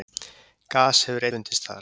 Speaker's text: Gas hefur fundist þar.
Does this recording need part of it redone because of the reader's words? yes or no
no